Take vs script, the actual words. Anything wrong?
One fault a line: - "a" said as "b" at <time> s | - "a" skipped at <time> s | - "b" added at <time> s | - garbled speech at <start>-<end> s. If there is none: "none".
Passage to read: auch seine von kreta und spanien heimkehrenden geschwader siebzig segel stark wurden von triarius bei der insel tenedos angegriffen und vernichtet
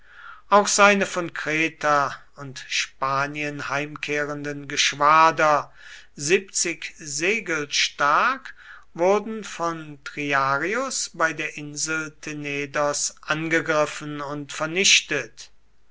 none